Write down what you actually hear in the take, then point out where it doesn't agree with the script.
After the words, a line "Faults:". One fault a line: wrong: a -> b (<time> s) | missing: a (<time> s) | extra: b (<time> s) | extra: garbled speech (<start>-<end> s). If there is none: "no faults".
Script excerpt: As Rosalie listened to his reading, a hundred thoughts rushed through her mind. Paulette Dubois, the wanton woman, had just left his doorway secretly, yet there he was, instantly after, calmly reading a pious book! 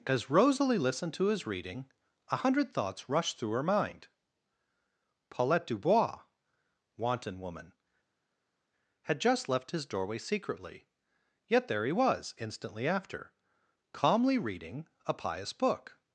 As Rosalie listened to his reading, a hundred thoughts rushed through her mind. Paulette Dubois, wanton woman, had just left his doorway secretly, yet there he was, instantly after, calmly reading a pious book!
Faults:
missing: the (6.2 s)